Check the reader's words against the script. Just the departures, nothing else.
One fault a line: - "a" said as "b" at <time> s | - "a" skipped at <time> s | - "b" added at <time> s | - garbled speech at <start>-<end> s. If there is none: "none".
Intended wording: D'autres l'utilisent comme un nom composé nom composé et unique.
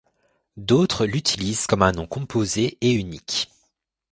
- "nom composé" skipped at 2.8 s